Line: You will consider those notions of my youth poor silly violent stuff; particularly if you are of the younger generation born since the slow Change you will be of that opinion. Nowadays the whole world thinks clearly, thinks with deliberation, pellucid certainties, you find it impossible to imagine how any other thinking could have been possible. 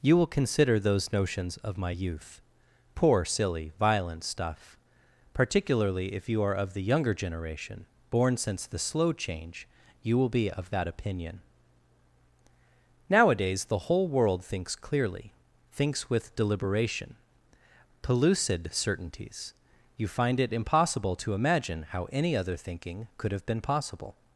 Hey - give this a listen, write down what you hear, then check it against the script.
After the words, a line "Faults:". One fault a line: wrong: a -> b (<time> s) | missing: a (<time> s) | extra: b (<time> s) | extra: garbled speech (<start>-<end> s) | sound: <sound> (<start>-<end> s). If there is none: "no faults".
You will consider those notions of my youth poor silly violent stuff; particularly if you are of the younger generation born since the slow Change you will be of that opinion. Nowadays the whole world thinks clearly, thinks with deliberation, pellucid certainties, you find it impossible to imagine how any other thinking could have been possible.
Faults:
no faults